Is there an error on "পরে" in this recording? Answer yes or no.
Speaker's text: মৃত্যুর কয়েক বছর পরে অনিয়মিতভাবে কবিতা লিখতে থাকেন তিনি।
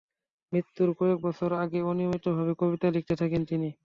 yes